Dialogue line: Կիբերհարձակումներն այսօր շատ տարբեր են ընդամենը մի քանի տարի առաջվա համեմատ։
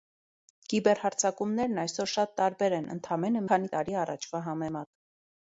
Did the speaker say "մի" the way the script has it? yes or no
no